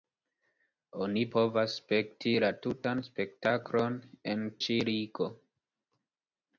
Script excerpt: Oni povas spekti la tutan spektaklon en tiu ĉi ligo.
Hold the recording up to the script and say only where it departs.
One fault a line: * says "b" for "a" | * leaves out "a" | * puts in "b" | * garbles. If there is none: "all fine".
* leaves out "tiu"